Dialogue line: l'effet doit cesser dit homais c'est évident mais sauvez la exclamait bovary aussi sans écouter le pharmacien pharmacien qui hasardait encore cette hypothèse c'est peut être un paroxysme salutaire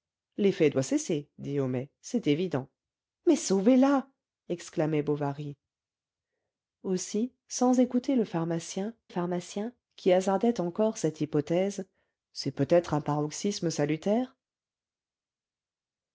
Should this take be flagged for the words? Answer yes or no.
no